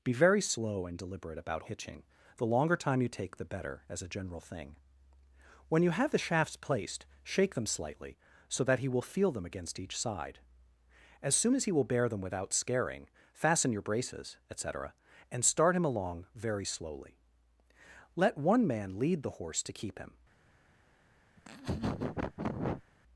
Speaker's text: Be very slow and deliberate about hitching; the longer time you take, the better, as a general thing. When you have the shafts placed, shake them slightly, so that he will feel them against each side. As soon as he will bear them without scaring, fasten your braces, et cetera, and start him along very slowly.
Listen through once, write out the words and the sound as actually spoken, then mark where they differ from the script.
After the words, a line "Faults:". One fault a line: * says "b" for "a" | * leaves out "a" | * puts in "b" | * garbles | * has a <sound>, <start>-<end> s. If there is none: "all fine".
Be very slow and deliberate about hitching; the longer time you take, the better, as a general thing. When you have the shafts placed, shake them slightly, so that he will feel them against each side. As soon as he will bear them without scaring, fasten your braces, et cetera, and start him along very slowly. Let one man lead the horse to keep him
Faults:
* puts in "Let one man lead the horse to keep him"
* has a laugh, 21.4-22.8 s